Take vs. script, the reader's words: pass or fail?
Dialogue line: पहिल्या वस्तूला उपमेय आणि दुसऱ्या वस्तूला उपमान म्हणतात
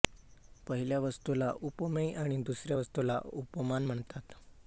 pass